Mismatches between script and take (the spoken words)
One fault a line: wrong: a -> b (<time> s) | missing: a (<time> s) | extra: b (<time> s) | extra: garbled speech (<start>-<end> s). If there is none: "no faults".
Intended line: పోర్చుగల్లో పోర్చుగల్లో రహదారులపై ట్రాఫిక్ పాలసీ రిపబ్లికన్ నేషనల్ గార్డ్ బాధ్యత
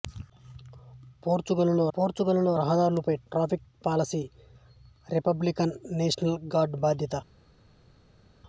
no faults